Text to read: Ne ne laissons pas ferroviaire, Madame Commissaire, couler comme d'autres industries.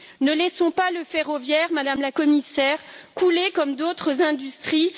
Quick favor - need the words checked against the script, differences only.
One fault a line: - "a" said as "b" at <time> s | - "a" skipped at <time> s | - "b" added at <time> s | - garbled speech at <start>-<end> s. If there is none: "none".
- "ne" skipped at 0.3 s
- "le" added at 0.9 s
- "la" added at 2.0 s